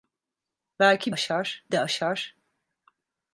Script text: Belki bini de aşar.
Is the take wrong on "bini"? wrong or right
wrong